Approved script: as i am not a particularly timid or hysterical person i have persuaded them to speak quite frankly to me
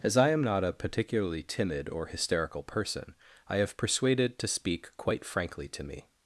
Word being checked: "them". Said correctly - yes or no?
no